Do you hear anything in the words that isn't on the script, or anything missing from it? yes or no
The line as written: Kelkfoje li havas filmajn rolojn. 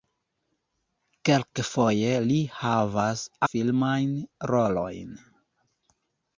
no